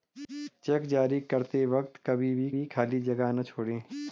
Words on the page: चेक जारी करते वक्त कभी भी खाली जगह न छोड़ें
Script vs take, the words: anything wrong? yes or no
yes